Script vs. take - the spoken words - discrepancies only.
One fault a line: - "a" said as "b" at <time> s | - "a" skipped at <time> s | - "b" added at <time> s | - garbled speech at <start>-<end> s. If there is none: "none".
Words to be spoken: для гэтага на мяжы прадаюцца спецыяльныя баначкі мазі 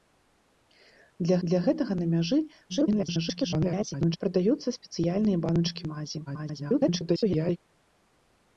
- "для" added at 1.5 s
- garbled speech at 2.7-4.2 s
- garbled speech at 6.3-7.6 s